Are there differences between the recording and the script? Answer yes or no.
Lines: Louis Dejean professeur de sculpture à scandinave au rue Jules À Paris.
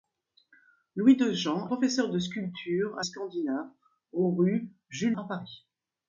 no